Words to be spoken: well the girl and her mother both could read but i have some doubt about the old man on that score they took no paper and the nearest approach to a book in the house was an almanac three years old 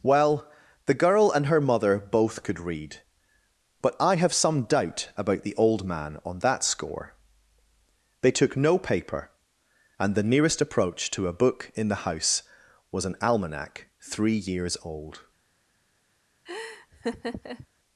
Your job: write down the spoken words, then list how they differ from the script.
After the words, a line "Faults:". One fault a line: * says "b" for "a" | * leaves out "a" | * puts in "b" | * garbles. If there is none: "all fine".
well the girl and her mother both could read but i have some doubt about the old man on that score they took no paper and the nearest approach to a book in the house was an almanac three years old
Faults:
all fine